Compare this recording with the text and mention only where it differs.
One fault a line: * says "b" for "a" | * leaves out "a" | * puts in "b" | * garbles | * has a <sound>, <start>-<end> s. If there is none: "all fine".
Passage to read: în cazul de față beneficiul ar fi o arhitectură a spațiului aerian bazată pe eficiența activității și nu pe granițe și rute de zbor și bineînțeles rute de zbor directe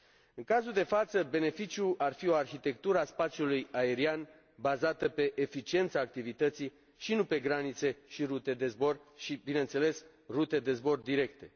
all fine